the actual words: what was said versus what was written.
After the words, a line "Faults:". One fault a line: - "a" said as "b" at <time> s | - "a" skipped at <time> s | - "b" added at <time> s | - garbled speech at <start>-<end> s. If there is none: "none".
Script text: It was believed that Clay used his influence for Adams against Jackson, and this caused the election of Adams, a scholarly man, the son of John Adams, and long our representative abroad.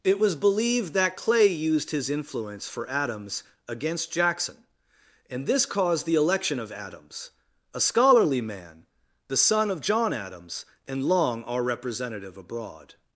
It was believed that Clay used his influence for Adams against Jackson, and this caused the election of Adams, a scholarly man, the son of John Adams, and long our representative abroad.
Faults:
none